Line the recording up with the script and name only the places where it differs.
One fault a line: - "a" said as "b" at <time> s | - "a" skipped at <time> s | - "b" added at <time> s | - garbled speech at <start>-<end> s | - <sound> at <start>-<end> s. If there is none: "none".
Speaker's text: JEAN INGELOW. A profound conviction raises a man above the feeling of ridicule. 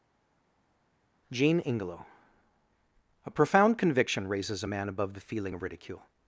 none